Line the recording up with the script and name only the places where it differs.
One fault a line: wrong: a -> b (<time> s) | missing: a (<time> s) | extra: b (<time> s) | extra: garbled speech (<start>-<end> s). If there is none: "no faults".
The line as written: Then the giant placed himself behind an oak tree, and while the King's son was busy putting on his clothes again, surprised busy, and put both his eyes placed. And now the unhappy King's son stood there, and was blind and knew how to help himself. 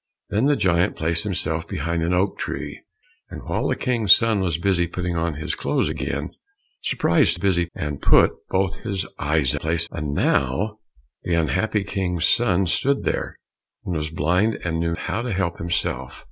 no faults